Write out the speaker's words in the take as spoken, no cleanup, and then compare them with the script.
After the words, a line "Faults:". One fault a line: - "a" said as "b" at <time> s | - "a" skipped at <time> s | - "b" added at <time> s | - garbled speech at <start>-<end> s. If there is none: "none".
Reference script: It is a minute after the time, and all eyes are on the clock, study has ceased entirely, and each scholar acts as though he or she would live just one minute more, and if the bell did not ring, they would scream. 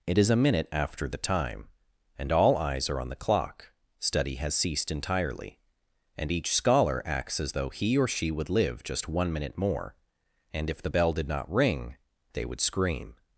It is a minute after the time, and all eyes are on the clock, study has ceased entirely, and each scholar acts as though he or she would live just one minute more, and if the bell did not ring, they would scream.
Faults:
none